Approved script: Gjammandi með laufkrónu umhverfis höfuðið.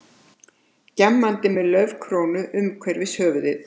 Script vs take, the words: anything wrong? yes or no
no